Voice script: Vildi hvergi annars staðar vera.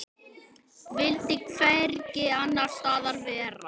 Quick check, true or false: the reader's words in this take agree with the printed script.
true